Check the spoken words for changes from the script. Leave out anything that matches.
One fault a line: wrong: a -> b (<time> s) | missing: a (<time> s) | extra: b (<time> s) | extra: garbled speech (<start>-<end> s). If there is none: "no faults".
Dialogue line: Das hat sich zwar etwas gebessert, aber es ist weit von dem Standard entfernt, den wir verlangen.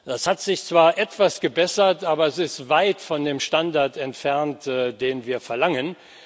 no faults